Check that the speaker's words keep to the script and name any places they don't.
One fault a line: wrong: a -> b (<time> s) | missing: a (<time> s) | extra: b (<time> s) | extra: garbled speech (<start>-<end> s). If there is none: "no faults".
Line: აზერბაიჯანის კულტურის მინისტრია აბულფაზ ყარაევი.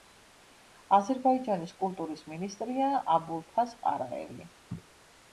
no faults